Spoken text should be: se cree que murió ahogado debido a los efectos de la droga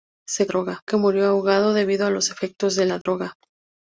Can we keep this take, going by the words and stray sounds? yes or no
no